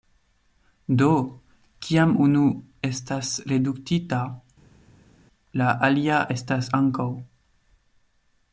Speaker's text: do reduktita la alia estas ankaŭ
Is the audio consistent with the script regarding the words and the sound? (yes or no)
no